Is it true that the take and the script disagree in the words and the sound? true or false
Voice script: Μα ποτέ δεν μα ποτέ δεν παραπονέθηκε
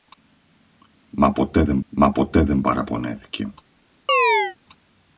true